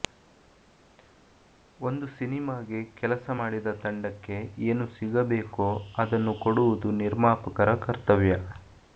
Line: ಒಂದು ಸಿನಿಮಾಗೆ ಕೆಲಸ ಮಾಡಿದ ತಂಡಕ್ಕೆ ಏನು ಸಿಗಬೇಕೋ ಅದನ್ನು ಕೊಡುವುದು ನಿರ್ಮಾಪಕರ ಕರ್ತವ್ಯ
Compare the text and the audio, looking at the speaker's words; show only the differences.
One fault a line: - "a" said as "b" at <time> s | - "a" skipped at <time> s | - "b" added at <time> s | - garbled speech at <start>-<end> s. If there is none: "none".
none